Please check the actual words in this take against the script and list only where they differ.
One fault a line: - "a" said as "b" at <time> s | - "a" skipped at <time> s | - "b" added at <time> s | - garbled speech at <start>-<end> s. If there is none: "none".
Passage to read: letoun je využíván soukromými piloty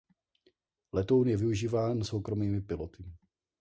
none